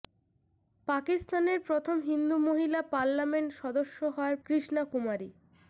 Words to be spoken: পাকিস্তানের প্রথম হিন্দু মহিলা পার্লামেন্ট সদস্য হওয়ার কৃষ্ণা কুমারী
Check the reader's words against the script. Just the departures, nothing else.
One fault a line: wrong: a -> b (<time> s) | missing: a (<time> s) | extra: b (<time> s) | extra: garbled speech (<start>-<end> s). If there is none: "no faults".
no faults